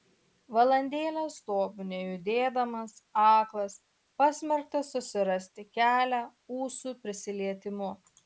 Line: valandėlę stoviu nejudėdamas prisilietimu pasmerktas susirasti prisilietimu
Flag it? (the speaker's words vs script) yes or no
yes